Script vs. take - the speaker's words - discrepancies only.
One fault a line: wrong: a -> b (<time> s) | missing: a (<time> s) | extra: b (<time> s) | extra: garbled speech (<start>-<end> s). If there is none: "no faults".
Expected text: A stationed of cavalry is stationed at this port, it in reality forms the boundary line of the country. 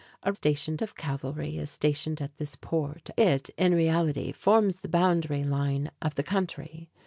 no faults